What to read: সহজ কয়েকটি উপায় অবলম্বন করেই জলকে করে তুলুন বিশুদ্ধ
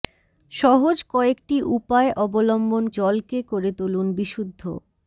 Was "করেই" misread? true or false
true